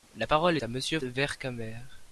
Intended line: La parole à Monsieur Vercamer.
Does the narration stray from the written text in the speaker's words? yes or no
no